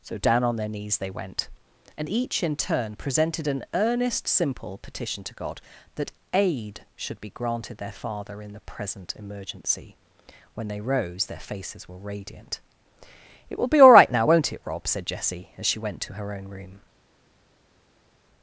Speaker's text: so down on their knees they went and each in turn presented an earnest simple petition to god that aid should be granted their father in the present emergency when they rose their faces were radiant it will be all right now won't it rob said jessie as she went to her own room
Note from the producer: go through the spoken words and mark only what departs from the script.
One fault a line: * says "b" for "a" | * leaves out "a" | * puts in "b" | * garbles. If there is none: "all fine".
all fine